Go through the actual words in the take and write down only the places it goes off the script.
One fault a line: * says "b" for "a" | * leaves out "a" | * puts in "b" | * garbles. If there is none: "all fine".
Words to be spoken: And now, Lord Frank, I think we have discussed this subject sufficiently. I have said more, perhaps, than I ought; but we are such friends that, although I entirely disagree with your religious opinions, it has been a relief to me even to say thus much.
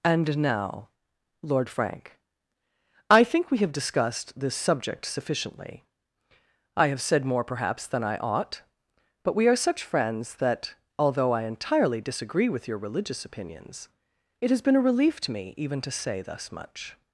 all fine